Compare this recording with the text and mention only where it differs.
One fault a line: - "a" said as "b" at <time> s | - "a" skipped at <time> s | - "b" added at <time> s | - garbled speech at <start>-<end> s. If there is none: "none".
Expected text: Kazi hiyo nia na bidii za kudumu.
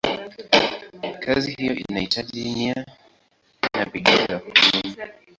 - "inahitaji" added at 1.7 s